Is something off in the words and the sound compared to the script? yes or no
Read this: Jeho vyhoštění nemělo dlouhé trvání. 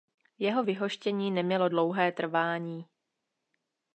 no